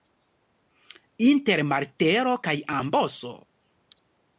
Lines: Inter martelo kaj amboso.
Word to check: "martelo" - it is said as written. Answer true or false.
true